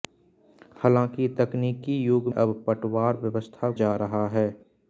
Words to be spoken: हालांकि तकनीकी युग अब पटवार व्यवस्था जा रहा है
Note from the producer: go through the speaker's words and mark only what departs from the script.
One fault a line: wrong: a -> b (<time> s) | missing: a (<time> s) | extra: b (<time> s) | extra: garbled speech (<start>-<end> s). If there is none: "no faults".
no faults